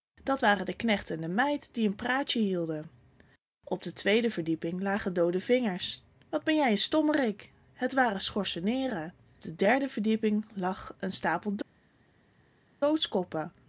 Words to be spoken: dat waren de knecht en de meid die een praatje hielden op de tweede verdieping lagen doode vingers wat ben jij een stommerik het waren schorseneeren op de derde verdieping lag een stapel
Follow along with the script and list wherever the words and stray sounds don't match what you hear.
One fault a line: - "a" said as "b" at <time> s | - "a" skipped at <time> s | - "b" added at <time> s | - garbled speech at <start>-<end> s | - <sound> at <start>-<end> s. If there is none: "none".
- "op" skipped at 9.1 s